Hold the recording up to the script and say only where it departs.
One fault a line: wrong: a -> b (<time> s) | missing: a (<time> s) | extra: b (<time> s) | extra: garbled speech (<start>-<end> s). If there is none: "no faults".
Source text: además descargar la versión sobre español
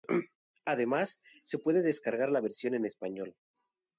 extra: se puede (1.4 s)
wrong: sobre -> en (2.7 s)